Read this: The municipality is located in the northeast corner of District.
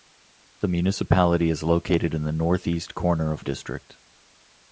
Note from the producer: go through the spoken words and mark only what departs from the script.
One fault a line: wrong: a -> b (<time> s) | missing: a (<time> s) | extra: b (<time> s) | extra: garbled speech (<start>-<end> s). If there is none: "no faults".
no faults